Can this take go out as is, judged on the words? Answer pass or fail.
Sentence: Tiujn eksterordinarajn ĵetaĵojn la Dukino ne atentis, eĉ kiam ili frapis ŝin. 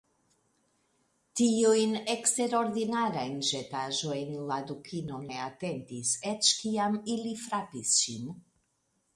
pass